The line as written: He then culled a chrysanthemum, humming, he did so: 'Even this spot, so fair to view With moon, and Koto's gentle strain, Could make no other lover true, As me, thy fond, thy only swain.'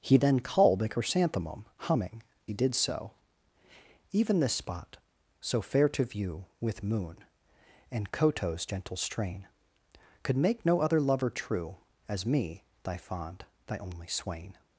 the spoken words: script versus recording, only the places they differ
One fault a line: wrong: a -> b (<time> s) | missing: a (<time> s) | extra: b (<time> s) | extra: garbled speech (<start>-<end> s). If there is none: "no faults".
no faults